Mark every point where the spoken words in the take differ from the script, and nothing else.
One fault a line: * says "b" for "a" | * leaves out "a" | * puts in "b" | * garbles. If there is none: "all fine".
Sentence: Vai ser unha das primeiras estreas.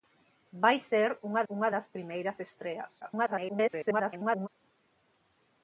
* puts in "unha"
* garbles